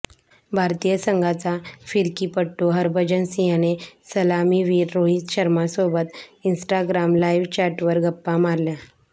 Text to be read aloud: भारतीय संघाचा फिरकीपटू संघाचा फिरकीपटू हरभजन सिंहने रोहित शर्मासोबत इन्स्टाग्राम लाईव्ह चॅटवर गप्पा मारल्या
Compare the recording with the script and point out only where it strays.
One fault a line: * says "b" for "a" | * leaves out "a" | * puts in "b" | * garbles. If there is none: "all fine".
* leaves out "संघाचा फिरकीपटू"
* puts in "सलामीवीर"